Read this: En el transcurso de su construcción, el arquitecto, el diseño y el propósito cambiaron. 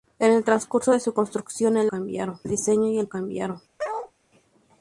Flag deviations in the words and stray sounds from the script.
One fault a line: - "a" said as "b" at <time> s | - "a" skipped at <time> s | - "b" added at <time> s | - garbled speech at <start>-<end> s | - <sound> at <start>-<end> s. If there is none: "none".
- "arquitecto" said as "cambiaron" at 1.9 s
- "propósito" skipped at 3.1 s
- bark at 3.8-4.1 s